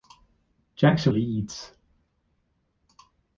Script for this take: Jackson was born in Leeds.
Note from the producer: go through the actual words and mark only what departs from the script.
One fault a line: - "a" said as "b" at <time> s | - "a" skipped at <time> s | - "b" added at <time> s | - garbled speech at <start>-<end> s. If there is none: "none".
- "was born in" skipped at 1.1 s